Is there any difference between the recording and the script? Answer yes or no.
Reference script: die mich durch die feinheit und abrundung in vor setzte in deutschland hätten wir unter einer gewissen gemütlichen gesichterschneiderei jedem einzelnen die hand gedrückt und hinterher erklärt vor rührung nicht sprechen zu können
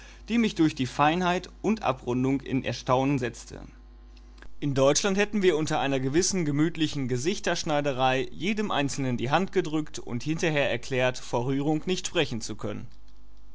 yes